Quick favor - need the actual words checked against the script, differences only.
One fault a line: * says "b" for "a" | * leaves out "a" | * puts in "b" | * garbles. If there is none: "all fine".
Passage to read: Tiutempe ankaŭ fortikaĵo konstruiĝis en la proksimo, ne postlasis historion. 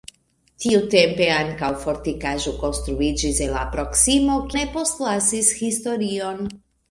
all fine